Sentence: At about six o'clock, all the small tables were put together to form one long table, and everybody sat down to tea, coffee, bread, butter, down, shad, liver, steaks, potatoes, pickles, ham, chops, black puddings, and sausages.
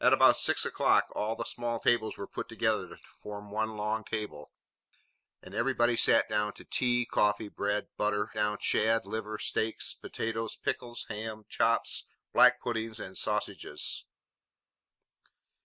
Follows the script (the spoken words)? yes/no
yes